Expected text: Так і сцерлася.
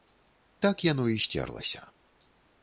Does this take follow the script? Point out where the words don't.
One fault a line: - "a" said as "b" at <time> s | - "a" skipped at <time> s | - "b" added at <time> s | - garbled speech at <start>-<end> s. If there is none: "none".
- "яно" added at 0.8 s